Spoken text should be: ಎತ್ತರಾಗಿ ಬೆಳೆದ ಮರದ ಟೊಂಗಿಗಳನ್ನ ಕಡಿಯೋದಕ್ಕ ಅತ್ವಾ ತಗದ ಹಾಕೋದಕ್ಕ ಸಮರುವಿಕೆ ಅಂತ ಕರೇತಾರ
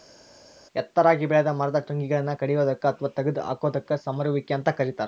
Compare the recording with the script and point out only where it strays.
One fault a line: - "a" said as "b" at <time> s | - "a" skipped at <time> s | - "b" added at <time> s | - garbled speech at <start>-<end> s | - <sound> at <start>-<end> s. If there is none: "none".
none